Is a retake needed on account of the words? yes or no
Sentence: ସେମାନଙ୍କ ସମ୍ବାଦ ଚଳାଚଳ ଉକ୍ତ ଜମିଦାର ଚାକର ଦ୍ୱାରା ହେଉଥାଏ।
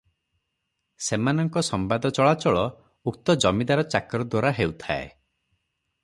no